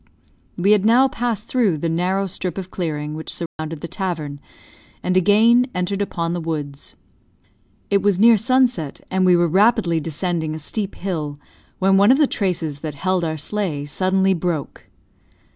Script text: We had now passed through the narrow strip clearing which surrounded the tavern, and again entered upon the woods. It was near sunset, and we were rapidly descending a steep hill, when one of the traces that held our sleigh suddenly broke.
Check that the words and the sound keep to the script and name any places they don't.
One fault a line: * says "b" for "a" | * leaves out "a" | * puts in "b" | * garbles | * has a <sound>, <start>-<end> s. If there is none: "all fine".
* puts in "of"
* has a dropout, 3.5-3.6 s